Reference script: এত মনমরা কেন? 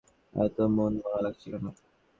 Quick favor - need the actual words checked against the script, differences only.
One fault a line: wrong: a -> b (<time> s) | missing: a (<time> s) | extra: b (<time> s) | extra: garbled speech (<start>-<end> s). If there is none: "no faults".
extra: লাগছে (1.2 s)